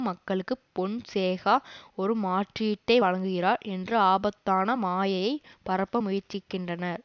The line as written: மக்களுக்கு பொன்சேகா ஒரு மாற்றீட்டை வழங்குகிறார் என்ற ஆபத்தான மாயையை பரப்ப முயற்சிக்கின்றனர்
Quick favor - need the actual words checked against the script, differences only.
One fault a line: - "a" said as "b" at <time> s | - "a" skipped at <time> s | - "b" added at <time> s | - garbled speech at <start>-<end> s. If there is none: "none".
none